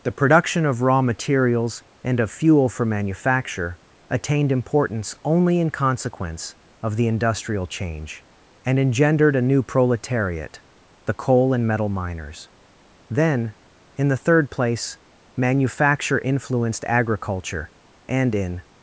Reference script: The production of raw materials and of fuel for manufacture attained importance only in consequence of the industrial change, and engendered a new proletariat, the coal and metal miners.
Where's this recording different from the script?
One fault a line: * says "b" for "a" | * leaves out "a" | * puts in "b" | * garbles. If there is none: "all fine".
* puts in "Then in the third place manufacture influenced agriculture and in"